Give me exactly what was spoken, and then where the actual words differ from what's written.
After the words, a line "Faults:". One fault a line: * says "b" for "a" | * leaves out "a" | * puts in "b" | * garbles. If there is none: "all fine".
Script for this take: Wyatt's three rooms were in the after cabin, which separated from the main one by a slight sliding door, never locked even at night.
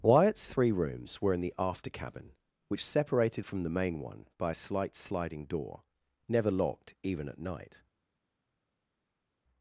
Wyatt's three rooms were in the after cabin, which separated from the main one by a slight sliding door, never locked even at night.
Faults:
all fine